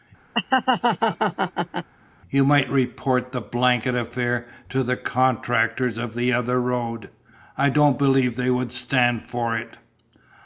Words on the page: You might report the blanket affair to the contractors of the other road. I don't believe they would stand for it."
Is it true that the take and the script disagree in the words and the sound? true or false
true